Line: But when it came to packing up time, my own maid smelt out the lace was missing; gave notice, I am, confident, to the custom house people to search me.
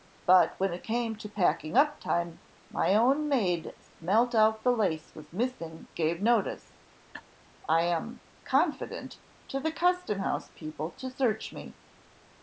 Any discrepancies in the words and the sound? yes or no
yes